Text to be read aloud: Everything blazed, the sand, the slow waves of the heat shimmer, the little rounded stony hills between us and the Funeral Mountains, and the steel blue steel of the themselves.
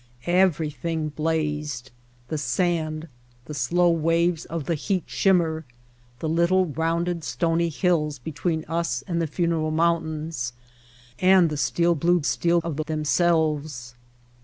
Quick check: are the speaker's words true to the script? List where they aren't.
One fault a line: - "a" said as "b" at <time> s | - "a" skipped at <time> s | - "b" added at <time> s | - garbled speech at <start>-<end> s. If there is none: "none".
none